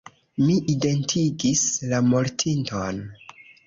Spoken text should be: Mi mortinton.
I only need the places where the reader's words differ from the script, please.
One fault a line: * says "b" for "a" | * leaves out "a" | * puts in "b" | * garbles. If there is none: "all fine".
* puts in "identigis la"